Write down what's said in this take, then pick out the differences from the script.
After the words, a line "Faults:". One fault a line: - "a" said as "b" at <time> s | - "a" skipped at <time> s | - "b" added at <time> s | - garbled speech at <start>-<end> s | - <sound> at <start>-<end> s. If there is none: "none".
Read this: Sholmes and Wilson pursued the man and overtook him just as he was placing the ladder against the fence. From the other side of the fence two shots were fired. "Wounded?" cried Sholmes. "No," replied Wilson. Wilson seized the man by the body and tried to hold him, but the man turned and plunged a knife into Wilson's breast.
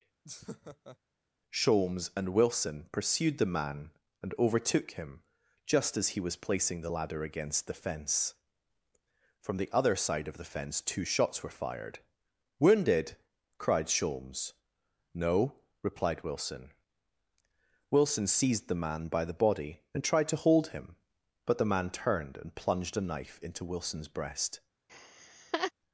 Sholmes and Wilson pursued the man and overtook him just as he was placing the ladder against the fence. From the other side of the fence two shots were fired. "Wounded?" cried Sholmes. "No," replied Wilson. Wilson seized the man by the body and tried to hold him, but the man turned and plunged a knife into Wilson's breast.
Faults:
- laugh at 0.2-1.0 s
- laugh at 24.9-25.7 s